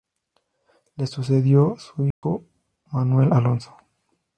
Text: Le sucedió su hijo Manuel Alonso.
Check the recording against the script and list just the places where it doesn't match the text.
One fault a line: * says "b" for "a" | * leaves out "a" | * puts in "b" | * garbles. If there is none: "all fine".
all fine